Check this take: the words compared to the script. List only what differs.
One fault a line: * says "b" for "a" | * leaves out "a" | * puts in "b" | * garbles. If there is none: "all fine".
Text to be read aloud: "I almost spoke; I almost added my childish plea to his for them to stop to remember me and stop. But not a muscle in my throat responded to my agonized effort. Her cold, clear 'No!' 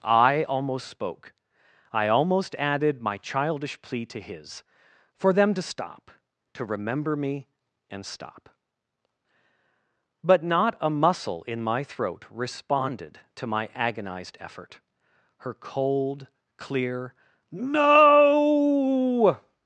all fine